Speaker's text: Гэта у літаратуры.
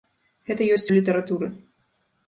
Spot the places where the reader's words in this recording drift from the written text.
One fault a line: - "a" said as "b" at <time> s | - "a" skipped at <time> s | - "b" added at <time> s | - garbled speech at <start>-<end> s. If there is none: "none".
- "ёсць" added at 0.8 s